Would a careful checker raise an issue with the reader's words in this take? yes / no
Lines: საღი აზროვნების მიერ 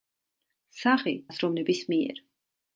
no